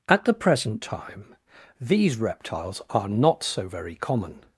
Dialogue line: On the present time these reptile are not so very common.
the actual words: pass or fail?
fail